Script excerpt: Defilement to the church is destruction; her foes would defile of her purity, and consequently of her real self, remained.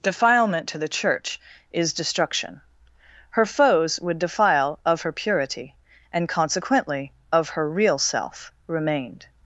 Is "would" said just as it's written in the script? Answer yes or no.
yes